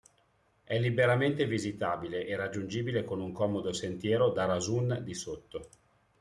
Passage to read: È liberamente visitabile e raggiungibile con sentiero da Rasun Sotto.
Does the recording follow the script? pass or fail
fail